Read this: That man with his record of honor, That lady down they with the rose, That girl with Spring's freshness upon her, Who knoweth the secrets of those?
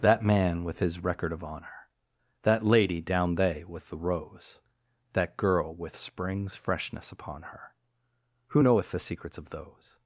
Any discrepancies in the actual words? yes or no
no